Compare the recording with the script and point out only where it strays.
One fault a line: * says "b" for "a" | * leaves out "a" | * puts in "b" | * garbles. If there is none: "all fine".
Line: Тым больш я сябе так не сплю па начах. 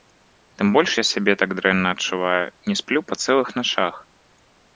* puts in "дрэнна адчуваю"
* puts in "цэлых"